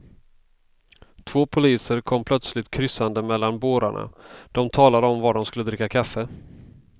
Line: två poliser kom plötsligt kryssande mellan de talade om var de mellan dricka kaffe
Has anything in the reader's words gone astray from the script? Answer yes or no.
yes